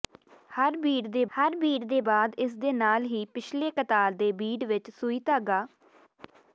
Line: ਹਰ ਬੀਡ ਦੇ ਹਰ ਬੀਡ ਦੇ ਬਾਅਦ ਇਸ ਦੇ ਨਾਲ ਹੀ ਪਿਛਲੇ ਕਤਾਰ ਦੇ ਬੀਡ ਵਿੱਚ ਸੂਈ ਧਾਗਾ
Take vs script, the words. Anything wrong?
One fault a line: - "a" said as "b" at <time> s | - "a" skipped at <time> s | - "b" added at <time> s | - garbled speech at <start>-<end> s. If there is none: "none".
none